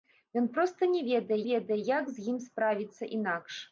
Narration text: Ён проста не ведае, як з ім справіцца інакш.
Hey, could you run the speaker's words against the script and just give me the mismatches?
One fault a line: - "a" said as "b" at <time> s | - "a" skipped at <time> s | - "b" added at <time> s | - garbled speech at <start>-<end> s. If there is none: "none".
- "ведае" added at 1.5 s